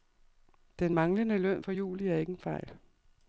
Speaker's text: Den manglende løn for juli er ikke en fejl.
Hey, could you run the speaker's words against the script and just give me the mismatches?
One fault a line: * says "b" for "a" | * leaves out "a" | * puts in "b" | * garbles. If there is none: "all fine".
all fine